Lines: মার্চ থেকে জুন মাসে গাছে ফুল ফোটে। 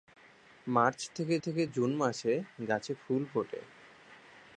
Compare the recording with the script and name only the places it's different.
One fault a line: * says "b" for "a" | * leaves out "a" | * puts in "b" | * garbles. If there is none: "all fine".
* puts in "থেকে"